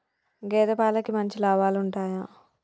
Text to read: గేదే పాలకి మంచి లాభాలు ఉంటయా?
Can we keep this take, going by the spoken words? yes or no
yes